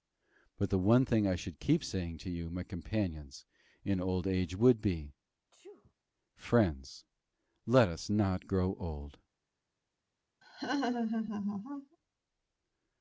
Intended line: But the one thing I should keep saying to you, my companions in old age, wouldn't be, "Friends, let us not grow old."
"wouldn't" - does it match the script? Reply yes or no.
no